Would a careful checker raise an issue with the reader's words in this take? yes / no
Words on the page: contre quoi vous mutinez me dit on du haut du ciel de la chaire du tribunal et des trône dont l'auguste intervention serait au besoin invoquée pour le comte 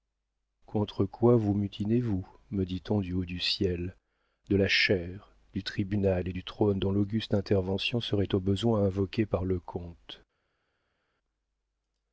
yes